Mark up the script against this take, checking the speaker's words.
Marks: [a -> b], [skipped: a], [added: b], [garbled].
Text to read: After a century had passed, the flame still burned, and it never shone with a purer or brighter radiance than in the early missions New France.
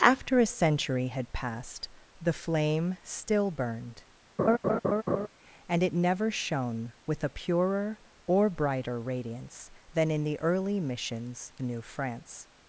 After a century had passed, the flame still burned, and it never shone with a purer or brighter radiance than in the early missions New France.